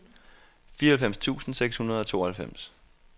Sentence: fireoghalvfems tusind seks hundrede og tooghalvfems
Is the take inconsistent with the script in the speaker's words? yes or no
no